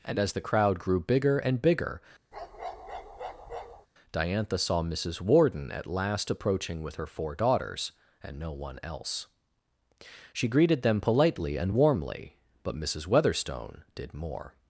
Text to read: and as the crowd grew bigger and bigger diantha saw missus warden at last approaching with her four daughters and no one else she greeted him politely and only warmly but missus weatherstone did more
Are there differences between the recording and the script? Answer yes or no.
yes